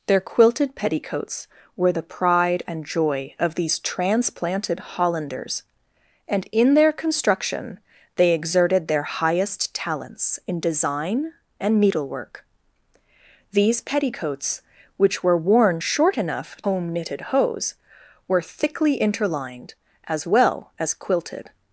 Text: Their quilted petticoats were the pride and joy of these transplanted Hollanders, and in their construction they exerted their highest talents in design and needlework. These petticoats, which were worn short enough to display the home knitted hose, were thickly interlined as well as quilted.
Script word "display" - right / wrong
wrong